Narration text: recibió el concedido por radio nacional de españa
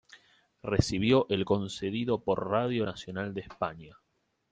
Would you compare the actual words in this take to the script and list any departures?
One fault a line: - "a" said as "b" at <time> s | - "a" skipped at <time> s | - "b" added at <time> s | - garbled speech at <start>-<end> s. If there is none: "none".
none